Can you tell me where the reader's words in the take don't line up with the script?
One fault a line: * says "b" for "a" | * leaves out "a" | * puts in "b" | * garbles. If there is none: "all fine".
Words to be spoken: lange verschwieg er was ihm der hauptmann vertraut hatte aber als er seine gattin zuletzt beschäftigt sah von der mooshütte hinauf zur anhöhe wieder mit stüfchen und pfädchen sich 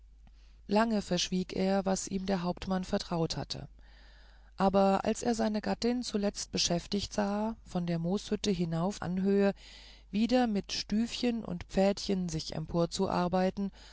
* leaves out "zur"